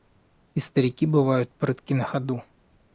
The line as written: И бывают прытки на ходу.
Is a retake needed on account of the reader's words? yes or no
yes